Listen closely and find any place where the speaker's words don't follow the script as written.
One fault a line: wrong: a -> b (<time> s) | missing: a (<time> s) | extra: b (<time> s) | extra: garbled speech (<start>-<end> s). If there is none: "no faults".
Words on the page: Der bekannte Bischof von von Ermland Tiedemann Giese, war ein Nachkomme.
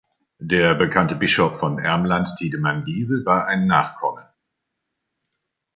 missing: von (1.8 s)